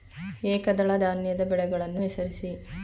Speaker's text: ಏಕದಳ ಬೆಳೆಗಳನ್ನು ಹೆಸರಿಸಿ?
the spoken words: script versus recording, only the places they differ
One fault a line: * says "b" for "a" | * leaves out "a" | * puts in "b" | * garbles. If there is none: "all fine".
* puts in "ಧಾನ್ಯದ"